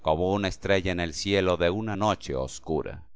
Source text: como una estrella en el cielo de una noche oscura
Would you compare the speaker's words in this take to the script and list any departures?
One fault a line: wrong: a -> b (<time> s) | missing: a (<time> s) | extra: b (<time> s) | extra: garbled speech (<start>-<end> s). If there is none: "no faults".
no faults